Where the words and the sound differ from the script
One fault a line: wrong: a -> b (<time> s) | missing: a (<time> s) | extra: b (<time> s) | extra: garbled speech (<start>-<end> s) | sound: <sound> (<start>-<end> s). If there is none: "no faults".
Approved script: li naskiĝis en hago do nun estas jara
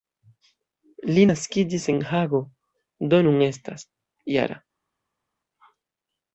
no faults